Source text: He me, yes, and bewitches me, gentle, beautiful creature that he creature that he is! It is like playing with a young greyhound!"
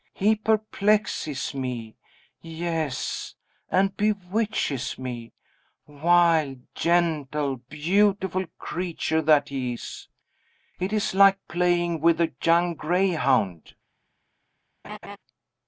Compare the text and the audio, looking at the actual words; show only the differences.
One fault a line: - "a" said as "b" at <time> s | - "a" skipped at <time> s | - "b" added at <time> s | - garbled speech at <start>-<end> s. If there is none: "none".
- "perplexes" added at 0.3 s
- "wild" added at 5.8 s
- "creature that he" skipped at 9.7 s